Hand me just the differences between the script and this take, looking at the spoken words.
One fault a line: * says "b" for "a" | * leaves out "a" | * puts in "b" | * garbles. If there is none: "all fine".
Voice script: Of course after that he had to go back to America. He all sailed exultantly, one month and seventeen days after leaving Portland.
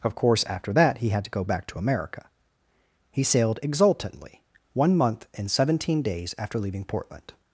* leaves out "all"